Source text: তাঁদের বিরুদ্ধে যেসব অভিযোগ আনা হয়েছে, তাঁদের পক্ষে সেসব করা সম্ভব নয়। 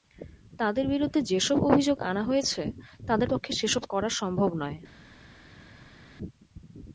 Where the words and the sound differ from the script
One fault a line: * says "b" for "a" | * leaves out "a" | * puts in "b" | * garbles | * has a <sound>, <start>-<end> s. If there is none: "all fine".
all fine